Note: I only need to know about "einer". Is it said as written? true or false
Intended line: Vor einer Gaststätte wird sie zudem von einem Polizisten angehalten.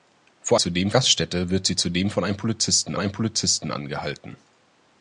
false